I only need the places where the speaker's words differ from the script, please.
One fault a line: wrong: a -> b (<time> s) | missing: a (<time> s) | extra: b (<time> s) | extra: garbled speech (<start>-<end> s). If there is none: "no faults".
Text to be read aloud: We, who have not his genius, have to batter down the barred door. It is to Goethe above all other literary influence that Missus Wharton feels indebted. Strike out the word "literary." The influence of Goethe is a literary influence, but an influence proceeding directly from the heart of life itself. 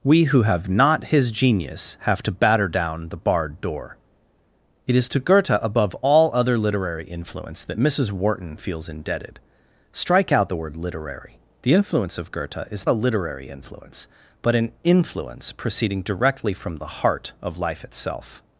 no faults